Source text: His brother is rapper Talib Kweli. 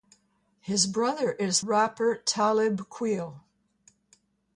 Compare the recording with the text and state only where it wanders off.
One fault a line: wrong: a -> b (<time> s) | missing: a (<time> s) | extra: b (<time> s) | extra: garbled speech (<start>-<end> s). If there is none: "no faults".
no faults